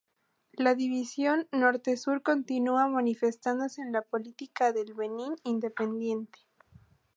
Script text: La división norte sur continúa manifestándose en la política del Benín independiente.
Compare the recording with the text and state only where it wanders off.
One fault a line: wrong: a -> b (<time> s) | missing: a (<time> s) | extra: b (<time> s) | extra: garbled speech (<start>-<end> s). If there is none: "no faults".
no faults